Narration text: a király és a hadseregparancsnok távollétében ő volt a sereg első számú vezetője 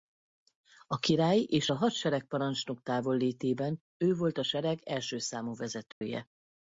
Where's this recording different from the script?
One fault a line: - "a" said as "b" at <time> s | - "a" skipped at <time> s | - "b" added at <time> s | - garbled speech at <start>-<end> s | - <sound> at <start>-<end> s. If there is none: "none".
- dropout at 5.9-6.0 s